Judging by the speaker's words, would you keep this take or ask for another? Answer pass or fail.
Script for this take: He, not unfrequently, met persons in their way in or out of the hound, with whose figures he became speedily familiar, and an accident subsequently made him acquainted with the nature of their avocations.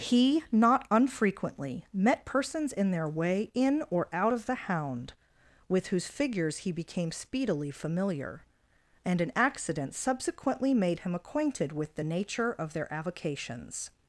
pass